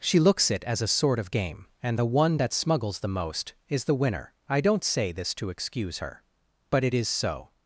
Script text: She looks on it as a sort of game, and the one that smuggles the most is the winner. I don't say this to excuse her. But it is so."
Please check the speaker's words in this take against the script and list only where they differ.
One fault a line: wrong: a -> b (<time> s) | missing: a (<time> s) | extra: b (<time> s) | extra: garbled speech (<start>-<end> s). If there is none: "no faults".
missing: on (0.5 s)